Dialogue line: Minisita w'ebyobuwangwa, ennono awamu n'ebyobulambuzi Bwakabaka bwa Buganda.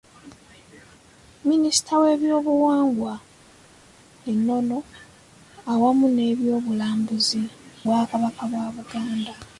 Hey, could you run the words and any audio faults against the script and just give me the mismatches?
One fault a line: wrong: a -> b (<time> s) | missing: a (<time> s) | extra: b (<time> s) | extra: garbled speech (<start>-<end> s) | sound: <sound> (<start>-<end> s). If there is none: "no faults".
no faults